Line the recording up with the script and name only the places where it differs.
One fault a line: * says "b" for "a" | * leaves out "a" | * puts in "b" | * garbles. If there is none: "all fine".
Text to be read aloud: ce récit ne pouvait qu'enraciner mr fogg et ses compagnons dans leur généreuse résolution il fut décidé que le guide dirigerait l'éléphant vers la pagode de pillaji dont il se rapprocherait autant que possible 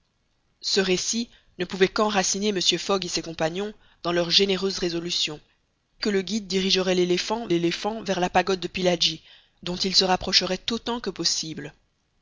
* leaves out "il fut décidé"
* puts in "l'éléphant"